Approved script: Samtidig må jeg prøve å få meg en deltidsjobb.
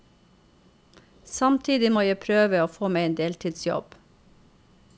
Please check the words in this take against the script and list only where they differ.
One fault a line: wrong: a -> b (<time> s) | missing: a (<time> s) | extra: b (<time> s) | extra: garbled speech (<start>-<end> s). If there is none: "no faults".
no faults